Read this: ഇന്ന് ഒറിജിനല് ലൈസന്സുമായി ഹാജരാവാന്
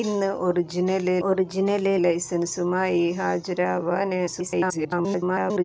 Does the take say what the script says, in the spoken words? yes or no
no